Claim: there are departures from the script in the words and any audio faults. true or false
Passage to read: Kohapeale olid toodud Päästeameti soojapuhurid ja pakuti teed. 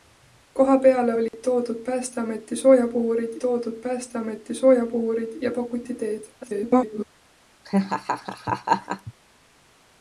true